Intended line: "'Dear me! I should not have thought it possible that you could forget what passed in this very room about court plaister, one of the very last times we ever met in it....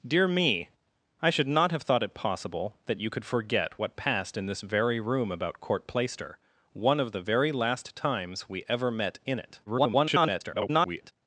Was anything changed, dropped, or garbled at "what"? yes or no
no